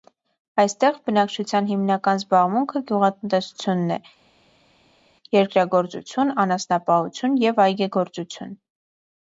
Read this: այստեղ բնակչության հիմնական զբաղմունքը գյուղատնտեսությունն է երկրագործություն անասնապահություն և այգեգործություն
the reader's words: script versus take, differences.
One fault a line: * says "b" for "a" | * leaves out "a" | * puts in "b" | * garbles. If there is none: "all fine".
all fine